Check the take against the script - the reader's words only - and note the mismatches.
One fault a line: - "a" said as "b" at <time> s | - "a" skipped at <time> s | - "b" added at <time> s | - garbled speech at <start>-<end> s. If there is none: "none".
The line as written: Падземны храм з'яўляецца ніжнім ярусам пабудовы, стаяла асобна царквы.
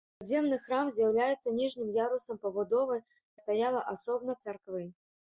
none